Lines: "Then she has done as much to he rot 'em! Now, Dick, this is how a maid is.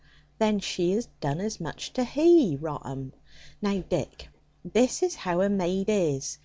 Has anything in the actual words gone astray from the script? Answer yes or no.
no